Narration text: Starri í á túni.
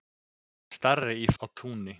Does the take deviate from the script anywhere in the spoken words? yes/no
no